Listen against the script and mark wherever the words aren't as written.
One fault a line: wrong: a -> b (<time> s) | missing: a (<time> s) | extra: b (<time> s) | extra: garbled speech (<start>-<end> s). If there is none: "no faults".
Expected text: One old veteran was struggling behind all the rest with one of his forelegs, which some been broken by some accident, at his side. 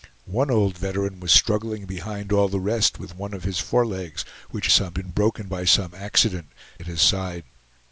no faults